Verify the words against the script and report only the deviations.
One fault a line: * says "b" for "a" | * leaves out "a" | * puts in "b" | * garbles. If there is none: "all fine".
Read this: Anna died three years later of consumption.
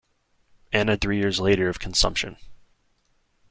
* leaves out "died"